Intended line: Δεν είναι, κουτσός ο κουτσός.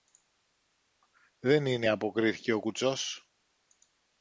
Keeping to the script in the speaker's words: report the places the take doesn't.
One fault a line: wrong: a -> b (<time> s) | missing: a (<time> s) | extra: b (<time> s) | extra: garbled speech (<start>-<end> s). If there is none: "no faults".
wrong: κουτσός -> αποκρίθηκε (1.9 s)